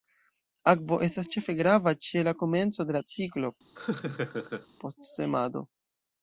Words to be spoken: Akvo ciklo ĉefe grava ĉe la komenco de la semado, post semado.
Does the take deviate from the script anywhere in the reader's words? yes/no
yes